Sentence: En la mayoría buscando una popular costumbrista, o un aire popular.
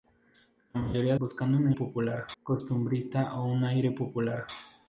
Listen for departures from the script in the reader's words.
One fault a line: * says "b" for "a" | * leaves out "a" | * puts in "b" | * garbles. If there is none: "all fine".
all fine